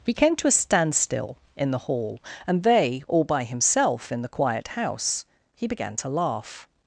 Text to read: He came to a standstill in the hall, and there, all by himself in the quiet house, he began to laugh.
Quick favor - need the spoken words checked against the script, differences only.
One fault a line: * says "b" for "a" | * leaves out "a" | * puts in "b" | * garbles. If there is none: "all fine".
* says "they" for "there"